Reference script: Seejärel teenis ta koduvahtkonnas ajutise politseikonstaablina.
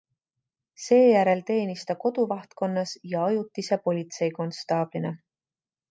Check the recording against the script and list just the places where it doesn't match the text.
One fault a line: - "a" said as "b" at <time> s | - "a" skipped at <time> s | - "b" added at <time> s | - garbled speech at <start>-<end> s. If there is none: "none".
- "ja" added at 3.1 s